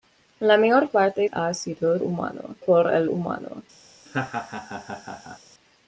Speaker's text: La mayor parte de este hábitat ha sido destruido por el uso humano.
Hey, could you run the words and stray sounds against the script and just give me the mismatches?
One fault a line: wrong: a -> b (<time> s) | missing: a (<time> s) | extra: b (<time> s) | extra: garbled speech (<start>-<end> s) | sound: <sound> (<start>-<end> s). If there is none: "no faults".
missing: de este hábitat (1.3 s)
wrong: destruido -> humano (2.0 s)
missing: uso (3.1 s)
sound: laugh (4.1-5.4 s)